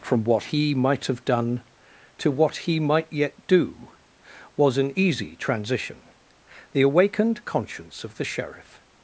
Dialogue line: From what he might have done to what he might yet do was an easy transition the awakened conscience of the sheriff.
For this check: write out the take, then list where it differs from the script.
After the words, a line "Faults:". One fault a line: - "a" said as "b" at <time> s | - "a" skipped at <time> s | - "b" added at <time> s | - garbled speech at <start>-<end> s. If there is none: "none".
From what he might have done to what he might yet do was an easy transition the awakened conscience of the sheriff.
Faults:
none